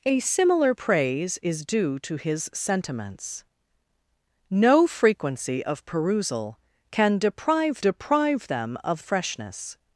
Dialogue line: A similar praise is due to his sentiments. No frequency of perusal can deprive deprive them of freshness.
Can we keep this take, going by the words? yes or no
yes